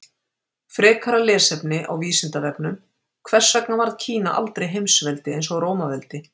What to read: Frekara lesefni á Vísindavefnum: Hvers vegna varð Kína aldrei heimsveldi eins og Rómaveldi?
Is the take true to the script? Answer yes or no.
yes